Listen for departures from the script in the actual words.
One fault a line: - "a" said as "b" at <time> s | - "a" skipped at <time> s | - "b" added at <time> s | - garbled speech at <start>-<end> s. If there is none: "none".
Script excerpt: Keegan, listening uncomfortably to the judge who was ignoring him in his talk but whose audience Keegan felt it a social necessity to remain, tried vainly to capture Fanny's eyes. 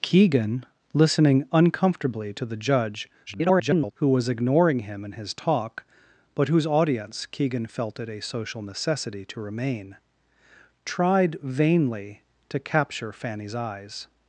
- garbled speech at 3.3-3.9 s